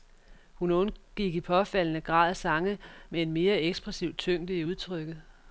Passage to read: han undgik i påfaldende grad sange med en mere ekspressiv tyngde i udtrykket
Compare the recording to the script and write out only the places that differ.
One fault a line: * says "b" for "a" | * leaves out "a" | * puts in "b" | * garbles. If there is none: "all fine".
* says "hun" for "han"